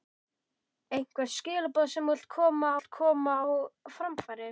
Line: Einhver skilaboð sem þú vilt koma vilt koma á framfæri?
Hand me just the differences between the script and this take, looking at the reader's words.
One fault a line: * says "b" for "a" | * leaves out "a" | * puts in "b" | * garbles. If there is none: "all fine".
all fine